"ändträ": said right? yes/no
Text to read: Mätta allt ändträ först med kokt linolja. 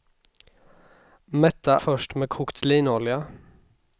no